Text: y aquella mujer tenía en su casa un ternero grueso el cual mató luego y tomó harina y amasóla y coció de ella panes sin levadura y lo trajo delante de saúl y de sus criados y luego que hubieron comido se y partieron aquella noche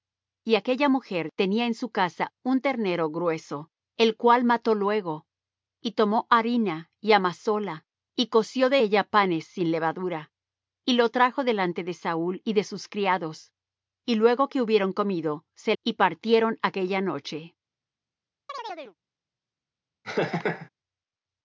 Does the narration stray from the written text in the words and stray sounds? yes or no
yes